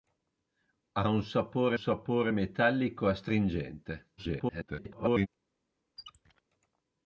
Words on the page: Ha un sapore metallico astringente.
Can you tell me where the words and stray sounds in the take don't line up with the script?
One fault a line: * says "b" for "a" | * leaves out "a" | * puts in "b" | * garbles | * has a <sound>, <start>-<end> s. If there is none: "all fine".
* puts in "sapore"
* garbles
* has a squeak, 6.0-6.4 s